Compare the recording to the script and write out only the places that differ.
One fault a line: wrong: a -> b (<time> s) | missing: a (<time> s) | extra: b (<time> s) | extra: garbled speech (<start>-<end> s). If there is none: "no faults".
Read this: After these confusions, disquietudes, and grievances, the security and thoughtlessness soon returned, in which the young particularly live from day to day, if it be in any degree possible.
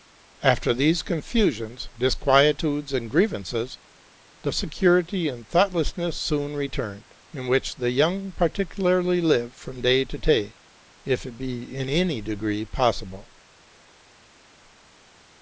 no faults